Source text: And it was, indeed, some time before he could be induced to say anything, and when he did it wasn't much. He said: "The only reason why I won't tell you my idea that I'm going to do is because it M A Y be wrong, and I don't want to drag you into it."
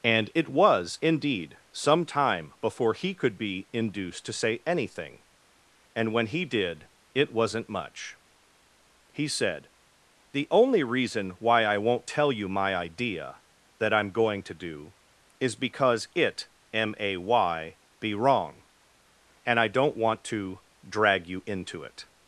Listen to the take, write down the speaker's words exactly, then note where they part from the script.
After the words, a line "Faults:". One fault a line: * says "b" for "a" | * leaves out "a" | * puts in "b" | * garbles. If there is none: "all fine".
And it was, indeed, some time before he could be induced to say anything, and when he did it wasn't much. He said: "The only reason why I won't tell you my idea that I'm going to do is because it M A Y be wrong, and I don't want to drag you into it."
Faults:
all fine